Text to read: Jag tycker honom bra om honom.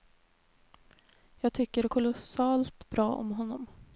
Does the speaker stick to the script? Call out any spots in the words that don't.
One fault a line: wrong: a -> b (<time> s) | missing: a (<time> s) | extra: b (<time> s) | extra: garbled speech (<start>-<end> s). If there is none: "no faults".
wrong: honom -> kolossalt (1.9 s)